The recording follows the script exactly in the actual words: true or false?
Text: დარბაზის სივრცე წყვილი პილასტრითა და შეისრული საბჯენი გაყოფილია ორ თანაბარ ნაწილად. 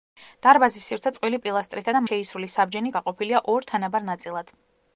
true